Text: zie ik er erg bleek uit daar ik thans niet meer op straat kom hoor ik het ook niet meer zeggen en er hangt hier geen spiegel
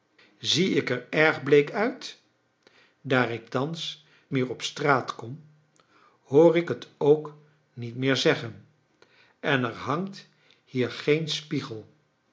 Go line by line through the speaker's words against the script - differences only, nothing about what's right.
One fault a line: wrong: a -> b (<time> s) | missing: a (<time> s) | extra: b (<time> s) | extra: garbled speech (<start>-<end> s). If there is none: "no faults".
missing: niet (4.1 s)